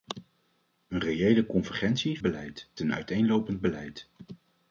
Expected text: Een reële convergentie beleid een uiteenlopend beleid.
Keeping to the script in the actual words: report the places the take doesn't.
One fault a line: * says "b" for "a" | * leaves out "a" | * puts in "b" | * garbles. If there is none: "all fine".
all fine